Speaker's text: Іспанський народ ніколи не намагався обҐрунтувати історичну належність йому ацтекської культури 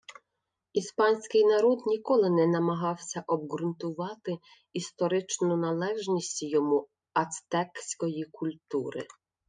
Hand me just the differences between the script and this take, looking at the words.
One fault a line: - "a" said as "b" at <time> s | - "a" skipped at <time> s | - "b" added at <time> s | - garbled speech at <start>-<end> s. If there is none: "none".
none